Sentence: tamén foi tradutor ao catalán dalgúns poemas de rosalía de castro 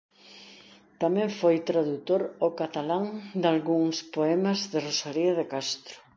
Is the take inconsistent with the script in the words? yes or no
no